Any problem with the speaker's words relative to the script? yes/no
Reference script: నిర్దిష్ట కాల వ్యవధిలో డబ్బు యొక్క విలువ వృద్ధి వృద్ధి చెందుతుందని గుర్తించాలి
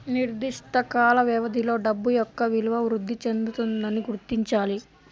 yes